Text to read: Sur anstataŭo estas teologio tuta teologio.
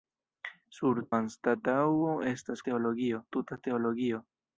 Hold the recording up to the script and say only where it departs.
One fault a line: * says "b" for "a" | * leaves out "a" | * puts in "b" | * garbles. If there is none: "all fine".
all fine